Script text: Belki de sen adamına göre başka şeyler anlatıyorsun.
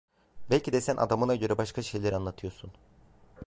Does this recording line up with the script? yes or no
yes